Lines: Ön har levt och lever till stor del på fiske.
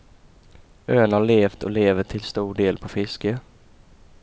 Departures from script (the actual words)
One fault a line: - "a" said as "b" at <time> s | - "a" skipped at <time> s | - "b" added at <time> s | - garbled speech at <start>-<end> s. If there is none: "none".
none